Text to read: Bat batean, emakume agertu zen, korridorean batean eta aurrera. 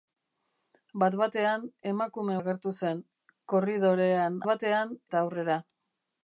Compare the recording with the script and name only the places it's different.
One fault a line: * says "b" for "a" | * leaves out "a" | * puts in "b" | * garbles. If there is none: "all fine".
all fine